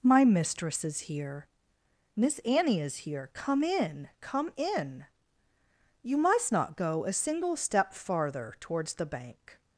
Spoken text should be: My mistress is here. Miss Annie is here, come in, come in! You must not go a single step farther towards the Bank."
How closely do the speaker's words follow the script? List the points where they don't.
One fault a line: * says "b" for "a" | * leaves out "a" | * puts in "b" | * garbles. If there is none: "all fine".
all fine